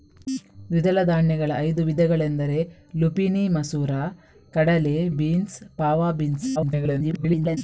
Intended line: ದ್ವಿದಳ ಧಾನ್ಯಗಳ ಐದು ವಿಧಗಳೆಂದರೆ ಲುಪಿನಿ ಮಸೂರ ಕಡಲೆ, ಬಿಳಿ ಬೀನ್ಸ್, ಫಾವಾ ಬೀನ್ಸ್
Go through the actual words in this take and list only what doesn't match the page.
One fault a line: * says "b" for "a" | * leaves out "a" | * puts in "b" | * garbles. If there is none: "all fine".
* leaves out "ಬಿಳಿ"
* garbles